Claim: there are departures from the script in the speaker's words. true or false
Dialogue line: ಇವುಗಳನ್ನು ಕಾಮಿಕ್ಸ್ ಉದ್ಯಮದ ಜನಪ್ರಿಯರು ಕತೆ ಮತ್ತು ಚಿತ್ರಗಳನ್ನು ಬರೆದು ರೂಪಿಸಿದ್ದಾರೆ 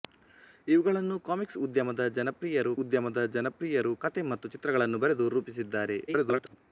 true